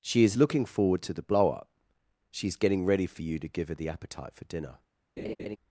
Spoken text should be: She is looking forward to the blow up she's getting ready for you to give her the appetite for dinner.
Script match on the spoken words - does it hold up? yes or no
yes